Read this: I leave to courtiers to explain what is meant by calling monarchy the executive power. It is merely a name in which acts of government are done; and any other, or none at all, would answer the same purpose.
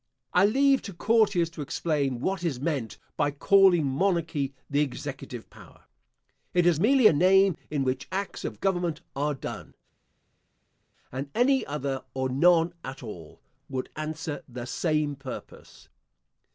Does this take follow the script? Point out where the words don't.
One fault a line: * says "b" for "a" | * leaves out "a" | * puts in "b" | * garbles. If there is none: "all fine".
all fine